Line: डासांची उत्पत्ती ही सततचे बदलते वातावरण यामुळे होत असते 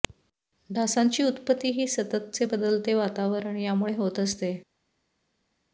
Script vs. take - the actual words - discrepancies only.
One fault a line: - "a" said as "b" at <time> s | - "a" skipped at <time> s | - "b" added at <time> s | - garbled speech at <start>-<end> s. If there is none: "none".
none